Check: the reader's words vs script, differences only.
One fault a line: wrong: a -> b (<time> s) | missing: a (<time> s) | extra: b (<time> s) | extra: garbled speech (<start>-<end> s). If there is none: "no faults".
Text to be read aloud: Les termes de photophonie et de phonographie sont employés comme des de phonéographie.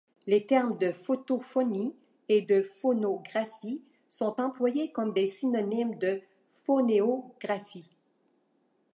extra: synonymes (5.3 s)